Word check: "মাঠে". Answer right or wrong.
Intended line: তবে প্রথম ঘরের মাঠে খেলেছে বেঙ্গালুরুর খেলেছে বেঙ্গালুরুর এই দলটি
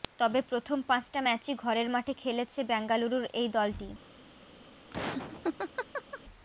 right